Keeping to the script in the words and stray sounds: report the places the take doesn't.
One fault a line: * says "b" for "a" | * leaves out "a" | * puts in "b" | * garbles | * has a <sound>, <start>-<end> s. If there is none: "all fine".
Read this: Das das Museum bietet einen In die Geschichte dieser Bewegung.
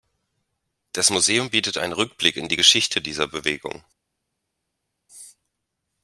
* leaves out "das"
* puts in "Rückblick"